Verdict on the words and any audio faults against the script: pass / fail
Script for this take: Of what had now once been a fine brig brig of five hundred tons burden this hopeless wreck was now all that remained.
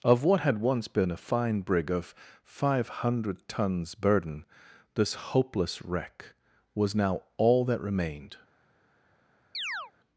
fail